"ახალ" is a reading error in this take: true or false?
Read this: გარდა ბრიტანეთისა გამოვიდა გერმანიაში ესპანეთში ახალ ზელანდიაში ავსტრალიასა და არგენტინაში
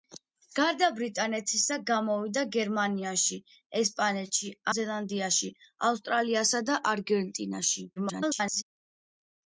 true